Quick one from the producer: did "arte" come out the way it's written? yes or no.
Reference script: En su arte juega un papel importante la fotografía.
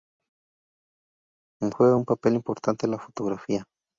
no